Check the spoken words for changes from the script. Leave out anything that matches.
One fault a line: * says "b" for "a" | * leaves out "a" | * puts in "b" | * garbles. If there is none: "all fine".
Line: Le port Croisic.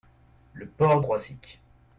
all fine